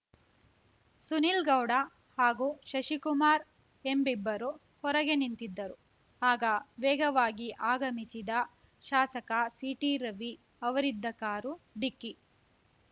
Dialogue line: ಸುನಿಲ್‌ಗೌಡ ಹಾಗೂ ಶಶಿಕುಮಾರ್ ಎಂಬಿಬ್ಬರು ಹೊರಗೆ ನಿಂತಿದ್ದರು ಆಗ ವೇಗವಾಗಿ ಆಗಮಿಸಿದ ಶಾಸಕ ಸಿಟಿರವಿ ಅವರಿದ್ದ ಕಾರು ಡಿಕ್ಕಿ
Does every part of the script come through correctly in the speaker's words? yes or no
yes